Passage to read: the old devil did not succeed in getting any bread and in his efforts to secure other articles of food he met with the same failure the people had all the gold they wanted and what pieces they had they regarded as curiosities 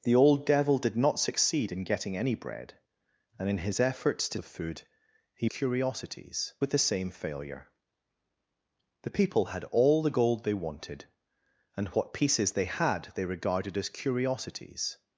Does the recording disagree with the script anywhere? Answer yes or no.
yes